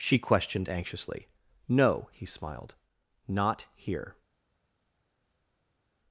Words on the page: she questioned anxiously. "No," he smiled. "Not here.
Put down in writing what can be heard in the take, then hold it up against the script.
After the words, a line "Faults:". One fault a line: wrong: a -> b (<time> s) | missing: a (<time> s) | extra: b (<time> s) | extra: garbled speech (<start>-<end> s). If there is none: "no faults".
she questioned anxiously. "No," he smiled. "Not here.
Faults:
no faults